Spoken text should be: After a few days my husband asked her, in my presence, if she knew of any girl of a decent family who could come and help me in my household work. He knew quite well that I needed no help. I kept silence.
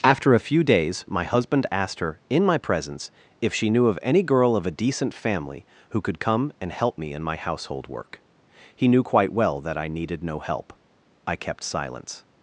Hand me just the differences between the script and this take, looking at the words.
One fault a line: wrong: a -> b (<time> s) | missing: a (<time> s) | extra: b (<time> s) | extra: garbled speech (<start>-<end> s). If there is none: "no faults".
no faults